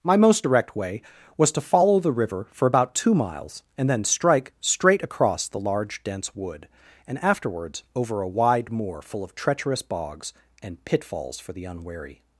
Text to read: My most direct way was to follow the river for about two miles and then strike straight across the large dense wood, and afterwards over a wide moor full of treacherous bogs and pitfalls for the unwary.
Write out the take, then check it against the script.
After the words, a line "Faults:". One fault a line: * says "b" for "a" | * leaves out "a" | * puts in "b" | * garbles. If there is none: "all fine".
My most direct way was to follow the river for about two miles and then strike straight across the large dense wood, and afterwards over a wide moor full of treacherous bogs and pitfalls for the unwary.
Faults:
all fine